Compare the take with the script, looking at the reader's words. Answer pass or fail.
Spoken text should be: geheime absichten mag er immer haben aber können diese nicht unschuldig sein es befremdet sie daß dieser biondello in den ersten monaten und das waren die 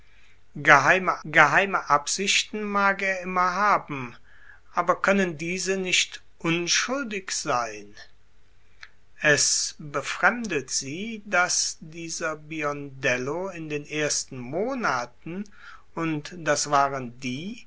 fail